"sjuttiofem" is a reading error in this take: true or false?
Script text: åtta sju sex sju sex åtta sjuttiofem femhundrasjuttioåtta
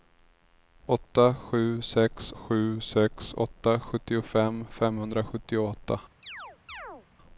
false